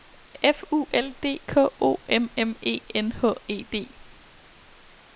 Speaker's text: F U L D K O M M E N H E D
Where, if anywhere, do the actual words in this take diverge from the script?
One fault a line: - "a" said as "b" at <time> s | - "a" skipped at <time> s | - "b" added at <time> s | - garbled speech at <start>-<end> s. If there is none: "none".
none